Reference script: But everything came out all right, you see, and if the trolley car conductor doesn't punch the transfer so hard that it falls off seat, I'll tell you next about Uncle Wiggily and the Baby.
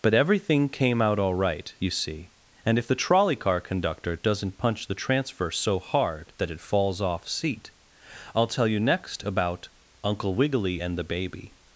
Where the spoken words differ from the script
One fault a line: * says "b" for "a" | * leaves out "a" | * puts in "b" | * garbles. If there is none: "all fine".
all fine